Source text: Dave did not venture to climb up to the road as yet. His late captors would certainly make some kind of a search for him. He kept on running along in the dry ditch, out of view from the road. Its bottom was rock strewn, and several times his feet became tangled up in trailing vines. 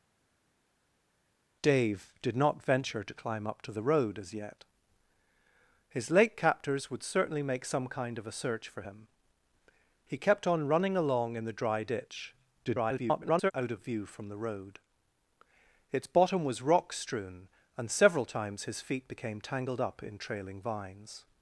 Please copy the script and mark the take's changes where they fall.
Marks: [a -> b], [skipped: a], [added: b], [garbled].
Dave did not venture to climb up to the road as yet. His late captors would certainly make some kind of a search for him. He kept on running along in the dry ditch, [garbled] out of view from the road. Its bottom was rock strewn, and several times his feet became tangled up in trailing vines.